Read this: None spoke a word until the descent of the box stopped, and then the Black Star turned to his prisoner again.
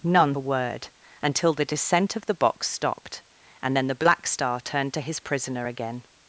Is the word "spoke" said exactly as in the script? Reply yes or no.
no